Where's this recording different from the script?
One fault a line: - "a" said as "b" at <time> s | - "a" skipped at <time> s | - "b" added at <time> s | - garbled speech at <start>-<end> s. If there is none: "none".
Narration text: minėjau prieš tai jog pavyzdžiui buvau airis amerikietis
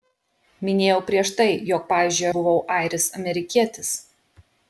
none